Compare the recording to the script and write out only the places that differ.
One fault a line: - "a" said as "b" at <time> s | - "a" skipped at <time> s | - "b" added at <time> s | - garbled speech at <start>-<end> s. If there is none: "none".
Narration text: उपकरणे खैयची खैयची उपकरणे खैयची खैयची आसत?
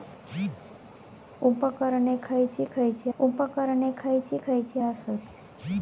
none